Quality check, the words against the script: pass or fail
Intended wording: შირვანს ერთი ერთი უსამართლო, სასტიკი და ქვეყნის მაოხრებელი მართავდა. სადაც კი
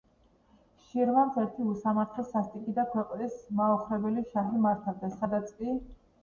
fail